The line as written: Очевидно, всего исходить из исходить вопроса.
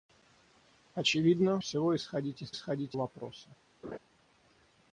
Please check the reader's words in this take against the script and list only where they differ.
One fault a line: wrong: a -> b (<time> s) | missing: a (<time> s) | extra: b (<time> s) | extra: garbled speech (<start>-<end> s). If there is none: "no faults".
no faults